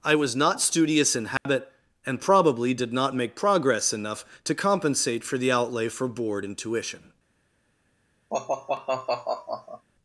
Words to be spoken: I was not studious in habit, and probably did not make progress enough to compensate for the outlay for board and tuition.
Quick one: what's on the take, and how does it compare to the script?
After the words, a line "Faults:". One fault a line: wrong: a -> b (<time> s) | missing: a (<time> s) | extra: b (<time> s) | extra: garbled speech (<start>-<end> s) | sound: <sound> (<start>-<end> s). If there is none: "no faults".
I was not studious in habit, and probably did not make progress enough to compensate for the outlay for board and tuition.
Faults:
sound: dropout (1.4-1.5 s)
sound: sigh (8.3-9.9 s)